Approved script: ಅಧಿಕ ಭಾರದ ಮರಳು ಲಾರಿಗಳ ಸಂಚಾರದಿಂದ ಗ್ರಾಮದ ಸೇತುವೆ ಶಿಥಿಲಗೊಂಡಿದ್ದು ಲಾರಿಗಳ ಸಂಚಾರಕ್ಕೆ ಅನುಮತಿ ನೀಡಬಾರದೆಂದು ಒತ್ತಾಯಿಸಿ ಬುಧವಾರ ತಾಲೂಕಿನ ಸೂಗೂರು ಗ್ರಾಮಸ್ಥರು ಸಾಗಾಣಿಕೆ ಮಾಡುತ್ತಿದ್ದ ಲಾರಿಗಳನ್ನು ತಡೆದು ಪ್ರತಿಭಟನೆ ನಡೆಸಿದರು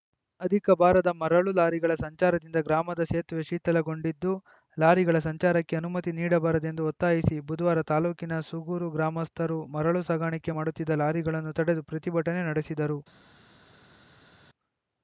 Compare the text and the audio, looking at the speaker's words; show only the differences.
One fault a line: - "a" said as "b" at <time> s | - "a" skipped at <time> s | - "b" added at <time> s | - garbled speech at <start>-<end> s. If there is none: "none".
- "ಮರಳು" added at 9.8 s